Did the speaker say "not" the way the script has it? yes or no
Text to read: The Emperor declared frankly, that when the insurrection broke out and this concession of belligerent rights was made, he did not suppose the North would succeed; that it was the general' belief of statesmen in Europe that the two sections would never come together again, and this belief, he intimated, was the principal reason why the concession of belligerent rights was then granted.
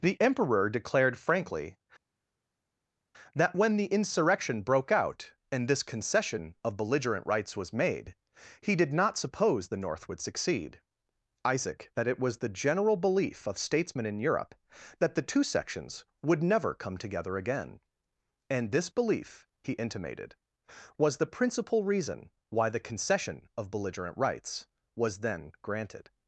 yes